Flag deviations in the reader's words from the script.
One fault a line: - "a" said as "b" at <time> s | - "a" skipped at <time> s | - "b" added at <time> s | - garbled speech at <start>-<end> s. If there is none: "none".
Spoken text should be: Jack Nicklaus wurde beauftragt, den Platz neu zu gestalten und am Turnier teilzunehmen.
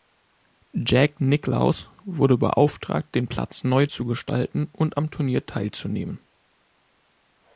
none